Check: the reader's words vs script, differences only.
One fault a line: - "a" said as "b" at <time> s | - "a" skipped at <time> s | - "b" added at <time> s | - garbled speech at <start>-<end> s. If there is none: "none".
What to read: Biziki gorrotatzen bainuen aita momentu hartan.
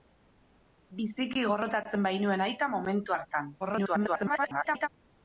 - garbled speech at 3.6-4.9 s